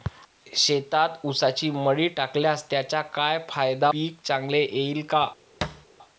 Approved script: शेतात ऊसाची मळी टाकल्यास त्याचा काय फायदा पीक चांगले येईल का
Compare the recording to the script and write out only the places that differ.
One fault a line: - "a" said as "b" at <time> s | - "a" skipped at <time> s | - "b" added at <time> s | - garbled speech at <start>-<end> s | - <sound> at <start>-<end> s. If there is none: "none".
- thud at 5.6-5.9 s